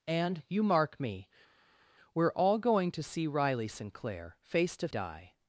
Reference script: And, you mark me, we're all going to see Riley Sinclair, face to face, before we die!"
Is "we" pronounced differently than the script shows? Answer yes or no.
yes